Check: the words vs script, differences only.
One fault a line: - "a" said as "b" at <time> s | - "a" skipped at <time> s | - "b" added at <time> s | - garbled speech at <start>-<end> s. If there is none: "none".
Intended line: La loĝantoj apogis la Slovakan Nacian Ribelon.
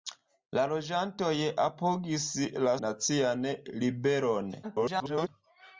- "Slovakan" skipped at 2.8 s
- garbled speech at 4.6-5.3 s